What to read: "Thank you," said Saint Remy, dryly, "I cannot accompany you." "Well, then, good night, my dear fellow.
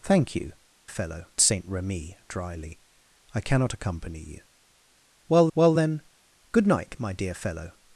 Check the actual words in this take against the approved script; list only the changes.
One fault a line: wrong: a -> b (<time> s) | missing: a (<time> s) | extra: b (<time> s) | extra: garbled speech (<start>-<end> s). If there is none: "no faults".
wrong: said -> fellow (0.9 s)
extra: well (5.5 s)